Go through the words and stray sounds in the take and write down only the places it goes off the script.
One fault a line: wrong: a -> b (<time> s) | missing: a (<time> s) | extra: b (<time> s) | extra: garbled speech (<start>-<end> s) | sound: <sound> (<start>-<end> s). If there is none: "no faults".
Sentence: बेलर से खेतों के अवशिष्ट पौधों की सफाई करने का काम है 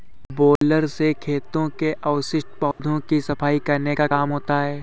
sound: dropout (0.6-0.6 s)
sound: dropout (2.7-2.8 s)
extra: होता (4.3 s)